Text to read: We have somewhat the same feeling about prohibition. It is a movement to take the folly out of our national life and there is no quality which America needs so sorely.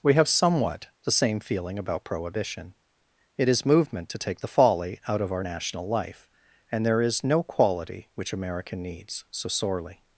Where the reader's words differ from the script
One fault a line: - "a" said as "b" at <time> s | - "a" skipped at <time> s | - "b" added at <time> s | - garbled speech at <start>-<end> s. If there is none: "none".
- "a" skipped at 3.6 s